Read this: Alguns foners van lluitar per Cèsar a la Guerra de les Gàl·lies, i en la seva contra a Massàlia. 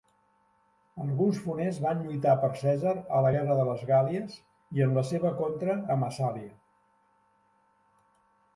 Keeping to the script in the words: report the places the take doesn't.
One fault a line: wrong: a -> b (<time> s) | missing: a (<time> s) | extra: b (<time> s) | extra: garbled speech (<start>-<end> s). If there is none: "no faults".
no faults